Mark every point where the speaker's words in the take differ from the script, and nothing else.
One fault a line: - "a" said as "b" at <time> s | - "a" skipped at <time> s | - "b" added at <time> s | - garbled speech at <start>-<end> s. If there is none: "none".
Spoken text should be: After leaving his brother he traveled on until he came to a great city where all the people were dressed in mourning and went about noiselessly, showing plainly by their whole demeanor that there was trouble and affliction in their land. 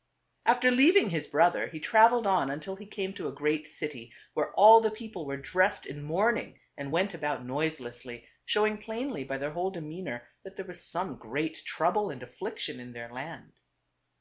- "some great" added at 10.8 s